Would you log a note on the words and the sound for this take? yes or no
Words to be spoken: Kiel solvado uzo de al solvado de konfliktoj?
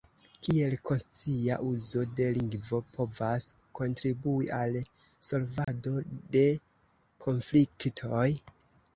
yes